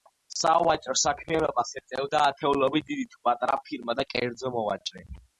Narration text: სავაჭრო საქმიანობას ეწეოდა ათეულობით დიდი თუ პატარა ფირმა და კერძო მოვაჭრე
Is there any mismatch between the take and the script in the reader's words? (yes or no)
no